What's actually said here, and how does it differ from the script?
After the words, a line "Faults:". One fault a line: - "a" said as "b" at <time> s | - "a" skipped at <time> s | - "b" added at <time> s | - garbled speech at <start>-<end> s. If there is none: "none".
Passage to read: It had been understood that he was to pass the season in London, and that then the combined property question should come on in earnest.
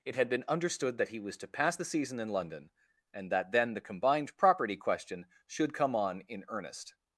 It had been understood that he was to pass the season in London, and that then the combined property question should come on in earnest.
Faults:
none